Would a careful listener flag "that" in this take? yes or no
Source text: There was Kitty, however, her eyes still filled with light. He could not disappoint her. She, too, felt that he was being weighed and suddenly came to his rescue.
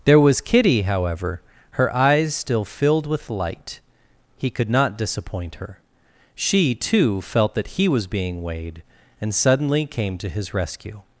no